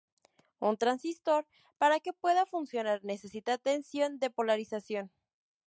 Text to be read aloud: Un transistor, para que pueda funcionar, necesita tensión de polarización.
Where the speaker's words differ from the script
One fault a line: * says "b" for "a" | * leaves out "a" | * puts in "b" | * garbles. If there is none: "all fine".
all fine